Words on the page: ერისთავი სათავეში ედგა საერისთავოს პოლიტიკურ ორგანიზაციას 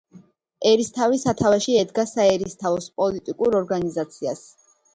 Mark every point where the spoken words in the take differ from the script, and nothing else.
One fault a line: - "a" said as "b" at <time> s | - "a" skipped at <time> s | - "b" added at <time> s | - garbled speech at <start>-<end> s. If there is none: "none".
none